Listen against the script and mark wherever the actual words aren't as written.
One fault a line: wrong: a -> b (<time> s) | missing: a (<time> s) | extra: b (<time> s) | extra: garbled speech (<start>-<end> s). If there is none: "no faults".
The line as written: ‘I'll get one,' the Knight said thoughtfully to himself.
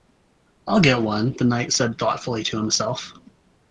no faults